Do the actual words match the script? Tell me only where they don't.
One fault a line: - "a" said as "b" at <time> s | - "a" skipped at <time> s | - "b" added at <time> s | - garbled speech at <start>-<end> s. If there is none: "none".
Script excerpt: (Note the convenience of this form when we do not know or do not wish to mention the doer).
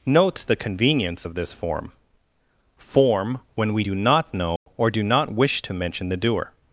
- "form" added at 2.8 s